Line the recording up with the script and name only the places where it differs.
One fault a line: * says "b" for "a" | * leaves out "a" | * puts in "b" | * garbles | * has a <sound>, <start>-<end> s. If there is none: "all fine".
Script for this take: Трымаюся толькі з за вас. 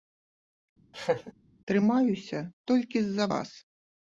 * has a laugh, 0.9-1.3 s